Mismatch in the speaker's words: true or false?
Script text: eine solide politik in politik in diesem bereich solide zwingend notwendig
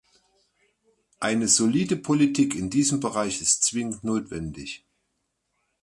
true